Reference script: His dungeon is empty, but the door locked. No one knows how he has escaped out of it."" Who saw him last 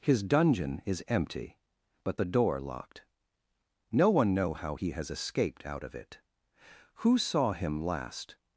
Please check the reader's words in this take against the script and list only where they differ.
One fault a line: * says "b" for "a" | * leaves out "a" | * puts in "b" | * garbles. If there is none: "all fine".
* says "know" for "knows"